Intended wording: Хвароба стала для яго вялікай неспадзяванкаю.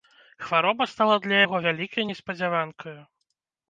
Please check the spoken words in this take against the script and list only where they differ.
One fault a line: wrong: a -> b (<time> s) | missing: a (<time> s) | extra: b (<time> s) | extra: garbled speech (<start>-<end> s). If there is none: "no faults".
no faults